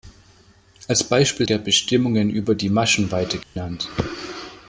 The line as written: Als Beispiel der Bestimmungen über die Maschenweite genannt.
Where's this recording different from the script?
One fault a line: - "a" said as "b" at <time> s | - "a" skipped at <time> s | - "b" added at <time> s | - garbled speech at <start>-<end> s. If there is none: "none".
none